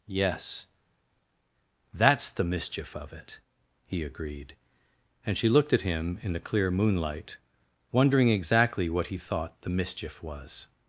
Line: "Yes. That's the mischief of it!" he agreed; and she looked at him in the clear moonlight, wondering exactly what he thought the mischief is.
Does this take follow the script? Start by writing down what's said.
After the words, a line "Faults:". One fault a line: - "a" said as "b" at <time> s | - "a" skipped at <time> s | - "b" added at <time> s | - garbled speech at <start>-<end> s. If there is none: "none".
"Yes. That's the mischief of it!" he agreed; and she looked at him in the clear moonlight, wondering exactly what he thought the mischief was.
Faults:
- "is" said as "was" at 10.2 s